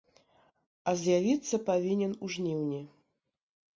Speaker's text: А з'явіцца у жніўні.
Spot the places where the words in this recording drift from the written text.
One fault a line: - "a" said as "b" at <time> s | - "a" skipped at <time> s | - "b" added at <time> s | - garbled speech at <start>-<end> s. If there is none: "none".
- "павінен" added at 1.7 s